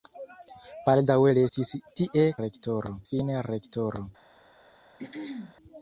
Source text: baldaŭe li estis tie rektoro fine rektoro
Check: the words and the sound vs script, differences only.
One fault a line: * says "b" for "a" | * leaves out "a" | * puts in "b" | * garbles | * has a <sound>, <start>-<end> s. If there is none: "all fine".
* has a throat clearing, 5.0-5.6 s